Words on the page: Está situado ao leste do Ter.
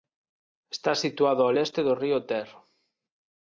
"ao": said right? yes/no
yes